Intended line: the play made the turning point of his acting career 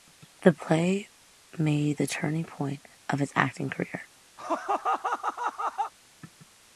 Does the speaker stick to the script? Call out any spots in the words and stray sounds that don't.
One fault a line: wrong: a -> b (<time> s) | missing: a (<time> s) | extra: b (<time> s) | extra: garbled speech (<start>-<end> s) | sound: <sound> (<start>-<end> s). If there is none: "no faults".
sound: laugh (4.4-5.9 s)